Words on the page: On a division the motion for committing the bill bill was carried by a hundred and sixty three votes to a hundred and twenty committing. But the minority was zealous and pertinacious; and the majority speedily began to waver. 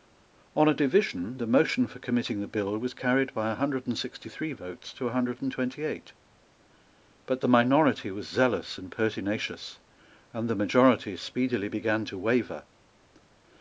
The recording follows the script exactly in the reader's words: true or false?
false